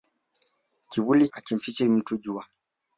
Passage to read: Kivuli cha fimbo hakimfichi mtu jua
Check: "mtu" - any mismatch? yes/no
no